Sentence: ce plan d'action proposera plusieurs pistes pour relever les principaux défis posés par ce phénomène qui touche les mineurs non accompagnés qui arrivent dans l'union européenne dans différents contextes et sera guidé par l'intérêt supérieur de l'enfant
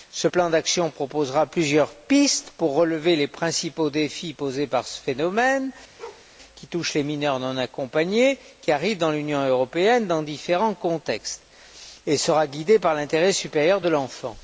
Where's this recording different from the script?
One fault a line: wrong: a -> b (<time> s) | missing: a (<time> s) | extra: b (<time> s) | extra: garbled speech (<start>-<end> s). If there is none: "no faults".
no faults